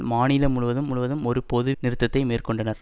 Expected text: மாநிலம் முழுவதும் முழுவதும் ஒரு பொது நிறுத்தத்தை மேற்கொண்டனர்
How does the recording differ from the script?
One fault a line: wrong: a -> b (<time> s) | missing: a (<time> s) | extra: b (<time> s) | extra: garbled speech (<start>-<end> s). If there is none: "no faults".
no faults